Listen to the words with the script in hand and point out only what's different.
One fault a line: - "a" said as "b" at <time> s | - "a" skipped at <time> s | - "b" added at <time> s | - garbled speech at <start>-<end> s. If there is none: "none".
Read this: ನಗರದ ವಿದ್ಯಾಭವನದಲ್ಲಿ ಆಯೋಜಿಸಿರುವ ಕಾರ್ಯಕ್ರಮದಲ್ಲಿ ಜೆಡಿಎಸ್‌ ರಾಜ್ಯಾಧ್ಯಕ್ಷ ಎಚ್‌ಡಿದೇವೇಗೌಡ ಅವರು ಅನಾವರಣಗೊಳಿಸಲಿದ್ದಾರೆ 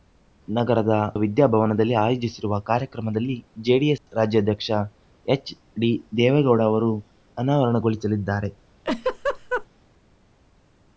none